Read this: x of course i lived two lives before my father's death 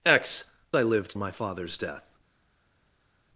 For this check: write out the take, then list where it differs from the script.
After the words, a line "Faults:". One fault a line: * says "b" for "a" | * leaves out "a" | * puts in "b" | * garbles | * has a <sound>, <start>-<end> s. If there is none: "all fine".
x i lived my father's death
Faults:
* leaves out "of course"
* leaves out "two lives before"